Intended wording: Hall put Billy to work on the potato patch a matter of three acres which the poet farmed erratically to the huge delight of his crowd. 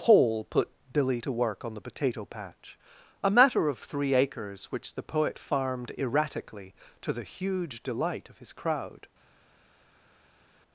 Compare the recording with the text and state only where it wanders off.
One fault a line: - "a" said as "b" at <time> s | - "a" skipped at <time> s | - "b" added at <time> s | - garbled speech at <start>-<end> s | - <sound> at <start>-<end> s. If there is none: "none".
- "Hall" said as "Paul" at 0.0 s